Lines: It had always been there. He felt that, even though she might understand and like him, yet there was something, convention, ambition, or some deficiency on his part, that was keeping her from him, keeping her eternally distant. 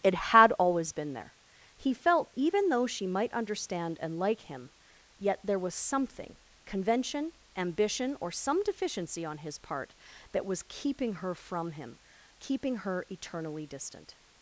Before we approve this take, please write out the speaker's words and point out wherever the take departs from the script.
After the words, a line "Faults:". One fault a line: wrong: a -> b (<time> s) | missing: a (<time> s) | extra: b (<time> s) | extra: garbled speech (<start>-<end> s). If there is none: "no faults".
It had always been there. He felt even though she might understand and like him, yet there was something, convention, ambition, or some deficiency on his part, that was keeping her from him, keeping her eternally distant.
Faults:
missing: that (2.3 s)